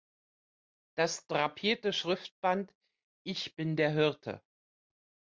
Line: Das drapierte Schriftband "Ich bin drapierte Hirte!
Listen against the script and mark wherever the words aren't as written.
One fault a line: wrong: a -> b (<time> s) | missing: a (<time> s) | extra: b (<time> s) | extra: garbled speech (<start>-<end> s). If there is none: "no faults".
wrong: drapierte -> der (3.7 s)